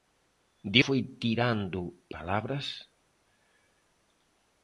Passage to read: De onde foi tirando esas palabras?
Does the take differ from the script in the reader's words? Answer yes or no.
yes